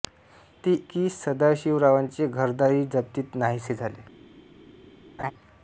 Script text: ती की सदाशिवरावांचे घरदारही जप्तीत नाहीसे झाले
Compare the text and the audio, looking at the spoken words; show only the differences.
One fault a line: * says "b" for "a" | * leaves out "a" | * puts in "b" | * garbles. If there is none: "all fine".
all fine